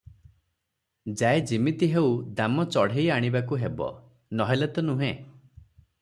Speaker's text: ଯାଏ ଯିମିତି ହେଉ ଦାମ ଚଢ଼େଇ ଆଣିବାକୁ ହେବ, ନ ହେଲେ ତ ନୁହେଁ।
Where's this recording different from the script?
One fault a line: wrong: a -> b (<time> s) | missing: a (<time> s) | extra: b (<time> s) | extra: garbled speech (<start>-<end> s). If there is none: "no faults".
no faults